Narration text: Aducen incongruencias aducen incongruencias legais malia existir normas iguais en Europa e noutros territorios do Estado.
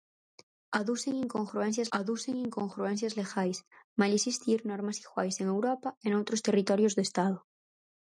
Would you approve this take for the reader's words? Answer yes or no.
yes